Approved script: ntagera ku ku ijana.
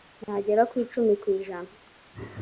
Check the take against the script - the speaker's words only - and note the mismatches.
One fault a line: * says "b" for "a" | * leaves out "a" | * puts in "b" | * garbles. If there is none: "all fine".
* puts in "icumi"